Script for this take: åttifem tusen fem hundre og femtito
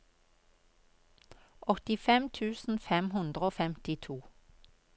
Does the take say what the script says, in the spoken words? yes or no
yes